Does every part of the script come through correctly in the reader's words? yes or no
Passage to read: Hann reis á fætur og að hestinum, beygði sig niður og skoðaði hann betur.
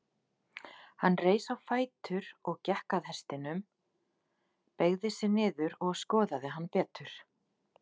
no